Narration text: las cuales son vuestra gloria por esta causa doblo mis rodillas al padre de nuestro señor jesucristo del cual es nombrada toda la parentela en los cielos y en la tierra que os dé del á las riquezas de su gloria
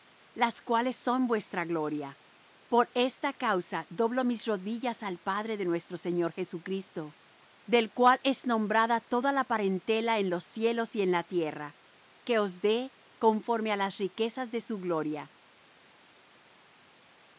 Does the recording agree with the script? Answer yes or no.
no